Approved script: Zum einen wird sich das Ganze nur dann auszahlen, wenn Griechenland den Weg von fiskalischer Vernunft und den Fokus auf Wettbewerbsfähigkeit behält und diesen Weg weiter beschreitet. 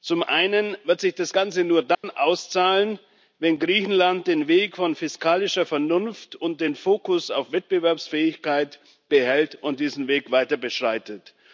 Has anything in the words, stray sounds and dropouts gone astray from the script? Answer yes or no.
yes